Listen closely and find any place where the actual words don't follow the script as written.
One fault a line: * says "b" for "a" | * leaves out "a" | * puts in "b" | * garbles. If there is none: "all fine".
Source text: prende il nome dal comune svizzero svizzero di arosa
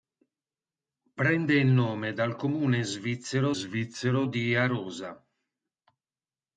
all fine